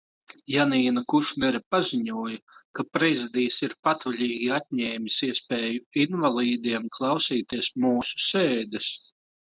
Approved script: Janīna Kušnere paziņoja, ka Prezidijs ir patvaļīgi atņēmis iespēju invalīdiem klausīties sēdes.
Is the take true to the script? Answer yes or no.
no